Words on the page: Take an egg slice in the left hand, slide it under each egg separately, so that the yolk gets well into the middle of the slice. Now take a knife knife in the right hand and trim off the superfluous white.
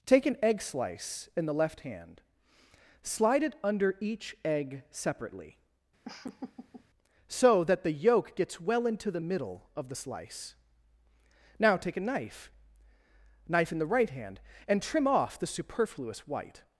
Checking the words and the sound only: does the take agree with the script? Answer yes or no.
no